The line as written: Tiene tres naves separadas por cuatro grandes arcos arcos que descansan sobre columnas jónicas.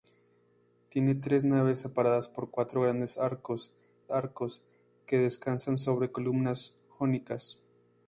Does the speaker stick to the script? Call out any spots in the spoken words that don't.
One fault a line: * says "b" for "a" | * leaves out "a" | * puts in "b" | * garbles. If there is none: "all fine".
all fine